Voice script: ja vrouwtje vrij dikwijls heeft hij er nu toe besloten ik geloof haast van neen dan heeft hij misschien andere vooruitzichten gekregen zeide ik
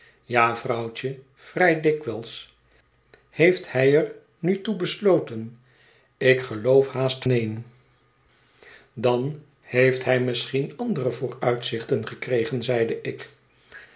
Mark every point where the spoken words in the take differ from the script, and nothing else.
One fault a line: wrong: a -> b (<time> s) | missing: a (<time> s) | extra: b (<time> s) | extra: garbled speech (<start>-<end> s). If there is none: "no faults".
missing: van (7.3 s)